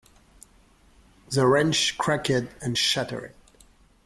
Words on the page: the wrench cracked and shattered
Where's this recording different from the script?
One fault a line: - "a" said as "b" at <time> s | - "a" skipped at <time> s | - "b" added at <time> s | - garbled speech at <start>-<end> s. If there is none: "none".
none